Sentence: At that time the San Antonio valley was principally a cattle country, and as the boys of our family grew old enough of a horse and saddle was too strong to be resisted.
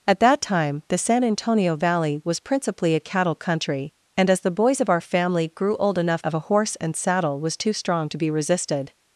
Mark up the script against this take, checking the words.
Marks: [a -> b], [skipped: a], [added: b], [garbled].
At that time the San Antonio valley was principally a cattle country, and as the boys of our family grew old enough of a horse and saddle was too strong to be resisted.